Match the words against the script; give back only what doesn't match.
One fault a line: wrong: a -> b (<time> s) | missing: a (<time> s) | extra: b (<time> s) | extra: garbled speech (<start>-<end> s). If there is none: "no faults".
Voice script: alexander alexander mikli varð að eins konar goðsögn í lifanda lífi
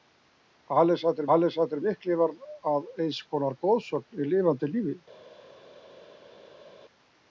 no faults